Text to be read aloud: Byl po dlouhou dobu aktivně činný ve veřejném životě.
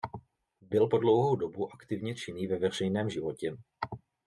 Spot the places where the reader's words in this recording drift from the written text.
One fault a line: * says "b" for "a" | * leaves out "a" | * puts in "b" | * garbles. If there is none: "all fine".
all fine